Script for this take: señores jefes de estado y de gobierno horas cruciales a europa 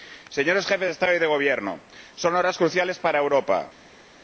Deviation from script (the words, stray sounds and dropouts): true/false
true